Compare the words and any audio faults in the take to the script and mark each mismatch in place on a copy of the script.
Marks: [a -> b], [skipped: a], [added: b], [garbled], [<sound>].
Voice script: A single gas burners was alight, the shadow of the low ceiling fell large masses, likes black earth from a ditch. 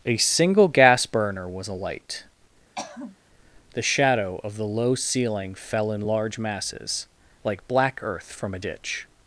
A single gas [burners -> burner] was alight, [throat clearing] the shadow of the low ceiling fell [added: in] large masses, [likes -> like] black earth from a ditch.